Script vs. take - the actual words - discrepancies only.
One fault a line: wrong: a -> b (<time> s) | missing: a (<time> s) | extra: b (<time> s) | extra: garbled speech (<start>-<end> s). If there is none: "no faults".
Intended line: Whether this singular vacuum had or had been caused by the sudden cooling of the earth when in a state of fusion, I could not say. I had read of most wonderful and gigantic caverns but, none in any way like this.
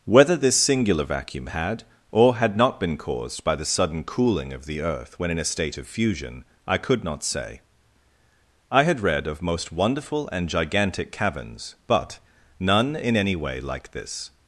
extra: not (2.6 s)